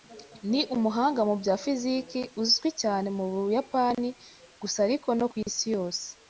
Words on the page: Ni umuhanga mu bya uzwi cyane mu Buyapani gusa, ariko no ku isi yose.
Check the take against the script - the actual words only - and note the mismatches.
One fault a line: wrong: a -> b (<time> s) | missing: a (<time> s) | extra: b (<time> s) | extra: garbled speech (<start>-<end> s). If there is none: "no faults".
extra: fiziki (1.6 s)